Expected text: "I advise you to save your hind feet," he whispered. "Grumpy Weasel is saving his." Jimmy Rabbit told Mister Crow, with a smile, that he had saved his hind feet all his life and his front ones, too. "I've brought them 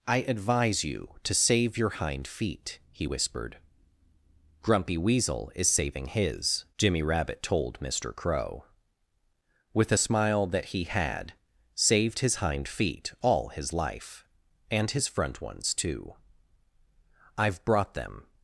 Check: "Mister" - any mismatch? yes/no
no